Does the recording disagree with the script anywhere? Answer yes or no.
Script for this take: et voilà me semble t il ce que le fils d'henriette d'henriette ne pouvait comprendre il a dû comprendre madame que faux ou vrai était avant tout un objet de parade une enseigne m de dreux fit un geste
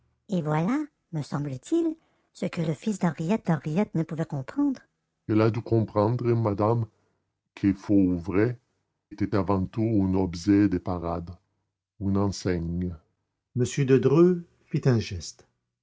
no